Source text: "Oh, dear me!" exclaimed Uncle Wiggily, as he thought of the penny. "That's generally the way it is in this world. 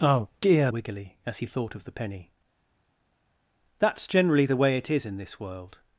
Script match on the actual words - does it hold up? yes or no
no